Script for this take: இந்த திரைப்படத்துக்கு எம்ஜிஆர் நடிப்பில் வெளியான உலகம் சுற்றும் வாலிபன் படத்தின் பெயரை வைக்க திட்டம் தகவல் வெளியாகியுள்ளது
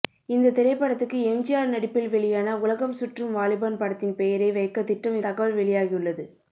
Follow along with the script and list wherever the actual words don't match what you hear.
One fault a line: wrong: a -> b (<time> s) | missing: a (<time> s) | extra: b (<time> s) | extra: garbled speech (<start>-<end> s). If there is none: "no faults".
no faults